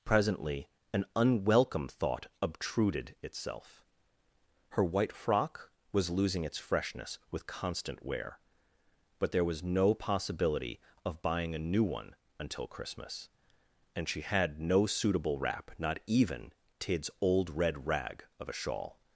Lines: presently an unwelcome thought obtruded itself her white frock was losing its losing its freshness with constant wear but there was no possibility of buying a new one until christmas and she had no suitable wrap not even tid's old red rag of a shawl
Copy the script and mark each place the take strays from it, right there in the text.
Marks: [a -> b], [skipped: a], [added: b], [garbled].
presently an unwelcome thought obtruded itself her white frock was losing its [skipped: losing its] freshness with constant wear but there was no possibility of buying a new one until christmas and she had no suitable wrap not even tid's old red rag of a shawl